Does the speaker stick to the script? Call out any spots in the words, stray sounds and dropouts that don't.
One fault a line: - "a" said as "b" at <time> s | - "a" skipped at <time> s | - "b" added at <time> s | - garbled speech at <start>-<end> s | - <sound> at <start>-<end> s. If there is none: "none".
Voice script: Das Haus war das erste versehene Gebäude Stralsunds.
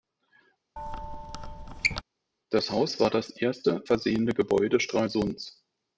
- squeak at 0.8-2.0 s